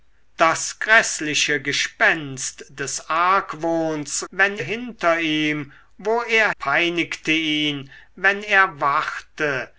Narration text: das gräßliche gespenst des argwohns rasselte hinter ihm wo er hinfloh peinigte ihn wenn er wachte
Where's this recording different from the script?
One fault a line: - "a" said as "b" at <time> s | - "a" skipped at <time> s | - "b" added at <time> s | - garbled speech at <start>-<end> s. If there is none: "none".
- "rasselte" said as "wenn" at 4.3 s
- "hinfloh" skipped at 6.5 s